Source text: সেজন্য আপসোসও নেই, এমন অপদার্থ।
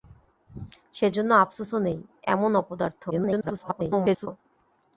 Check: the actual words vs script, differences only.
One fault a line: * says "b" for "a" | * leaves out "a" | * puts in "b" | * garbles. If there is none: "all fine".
* garbles